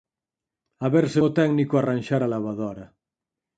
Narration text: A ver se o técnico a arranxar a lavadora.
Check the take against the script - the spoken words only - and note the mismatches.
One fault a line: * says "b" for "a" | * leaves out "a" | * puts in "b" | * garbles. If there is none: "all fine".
all fine